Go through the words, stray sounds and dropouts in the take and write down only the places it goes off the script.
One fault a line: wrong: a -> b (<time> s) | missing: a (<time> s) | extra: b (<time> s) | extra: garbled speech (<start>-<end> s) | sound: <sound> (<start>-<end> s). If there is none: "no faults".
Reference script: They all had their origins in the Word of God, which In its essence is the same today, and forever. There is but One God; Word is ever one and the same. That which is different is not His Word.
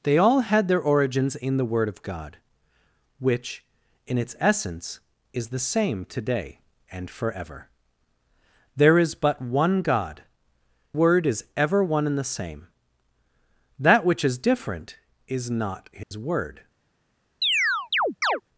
sound: dropout (16.0-16.1 s)
sound: chirp (17.4-18.4 s)